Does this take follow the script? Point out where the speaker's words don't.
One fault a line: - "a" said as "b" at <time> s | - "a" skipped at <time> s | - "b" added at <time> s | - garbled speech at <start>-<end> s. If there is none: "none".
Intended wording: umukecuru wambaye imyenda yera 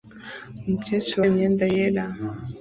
- "wambaye" skipped at 1.2 s